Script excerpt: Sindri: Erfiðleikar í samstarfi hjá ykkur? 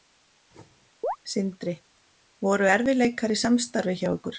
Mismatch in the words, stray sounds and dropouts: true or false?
true